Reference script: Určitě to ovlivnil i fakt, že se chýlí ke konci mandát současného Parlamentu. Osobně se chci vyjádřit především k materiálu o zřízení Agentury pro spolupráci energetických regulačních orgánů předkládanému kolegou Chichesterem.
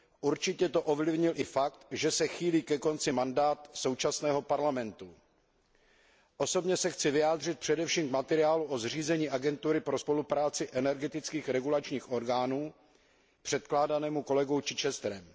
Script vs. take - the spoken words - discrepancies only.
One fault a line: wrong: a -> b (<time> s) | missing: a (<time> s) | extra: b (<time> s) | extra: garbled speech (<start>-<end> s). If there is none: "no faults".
no faults